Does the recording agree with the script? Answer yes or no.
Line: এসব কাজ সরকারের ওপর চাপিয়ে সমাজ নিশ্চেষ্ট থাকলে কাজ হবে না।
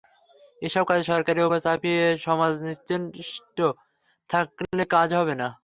yes